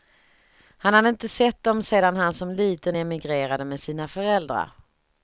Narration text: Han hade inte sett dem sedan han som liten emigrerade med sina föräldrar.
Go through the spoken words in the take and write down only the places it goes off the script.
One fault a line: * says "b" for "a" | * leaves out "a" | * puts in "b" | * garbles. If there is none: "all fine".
all fine